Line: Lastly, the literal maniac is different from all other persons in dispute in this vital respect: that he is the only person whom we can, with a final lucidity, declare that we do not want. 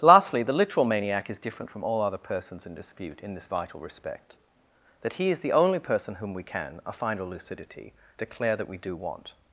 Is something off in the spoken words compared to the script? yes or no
yes